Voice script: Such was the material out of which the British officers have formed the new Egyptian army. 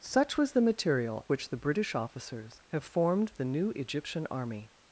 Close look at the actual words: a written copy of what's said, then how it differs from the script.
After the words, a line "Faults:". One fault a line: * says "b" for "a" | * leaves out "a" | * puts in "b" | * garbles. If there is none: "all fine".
Such was the material which the British officers have formed the new Egyptian army.
Faults:
* leaves out "out of"